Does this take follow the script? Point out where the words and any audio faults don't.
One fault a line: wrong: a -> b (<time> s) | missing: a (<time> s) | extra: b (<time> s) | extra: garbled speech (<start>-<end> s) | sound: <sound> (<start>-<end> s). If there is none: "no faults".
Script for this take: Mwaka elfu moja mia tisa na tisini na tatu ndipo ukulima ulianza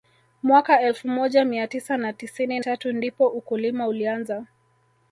missing: na (2.6 s)